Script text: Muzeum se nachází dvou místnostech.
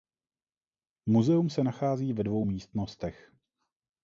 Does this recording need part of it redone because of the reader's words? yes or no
yes